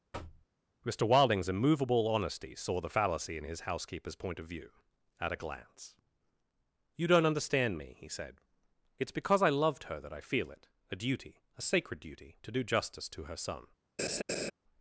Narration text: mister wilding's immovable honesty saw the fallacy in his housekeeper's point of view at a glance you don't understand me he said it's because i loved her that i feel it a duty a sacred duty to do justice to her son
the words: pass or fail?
pass